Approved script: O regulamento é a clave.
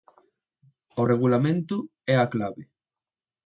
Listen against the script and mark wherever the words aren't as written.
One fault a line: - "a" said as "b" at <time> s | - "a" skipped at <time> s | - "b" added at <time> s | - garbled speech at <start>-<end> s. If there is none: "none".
none